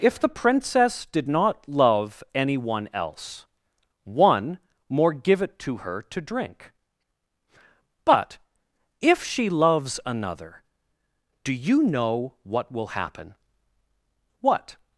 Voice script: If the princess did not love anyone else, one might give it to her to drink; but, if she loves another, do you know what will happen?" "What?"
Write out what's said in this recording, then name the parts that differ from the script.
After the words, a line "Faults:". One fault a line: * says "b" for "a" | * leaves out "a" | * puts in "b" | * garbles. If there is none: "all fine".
If the princess did not love anyone else, one more give it to her to drink; but, if she loves another, do you know what will happen?" "What?"
Faults:
* says "more" for "might"